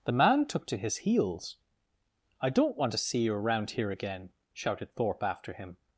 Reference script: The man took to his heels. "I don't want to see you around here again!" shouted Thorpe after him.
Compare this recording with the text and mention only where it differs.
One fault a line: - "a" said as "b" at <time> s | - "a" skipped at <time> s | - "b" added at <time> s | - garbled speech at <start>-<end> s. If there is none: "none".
none